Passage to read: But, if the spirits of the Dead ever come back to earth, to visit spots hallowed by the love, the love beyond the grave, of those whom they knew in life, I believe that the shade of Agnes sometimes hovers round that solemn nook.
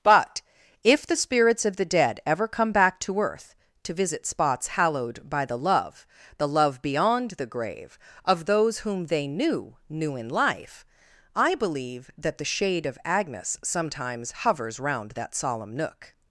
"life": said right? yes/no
yes